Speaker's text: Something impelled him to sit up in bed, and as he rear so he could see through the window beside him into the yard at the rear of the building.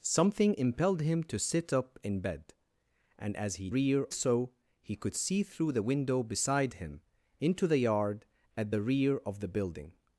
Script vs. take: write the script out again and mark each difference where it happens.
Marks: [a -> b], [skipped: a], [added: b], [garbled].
Something impelled him to sit up in bed, and as he rear so he could see through the window beside him into the yard at the rear of the building.